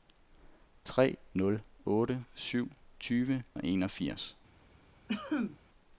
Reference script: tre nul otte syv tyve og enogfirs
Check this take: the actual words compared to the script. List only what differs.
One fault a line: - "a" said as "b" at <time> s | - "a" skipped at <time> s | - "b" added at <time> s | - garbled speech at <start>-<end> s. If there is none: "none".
none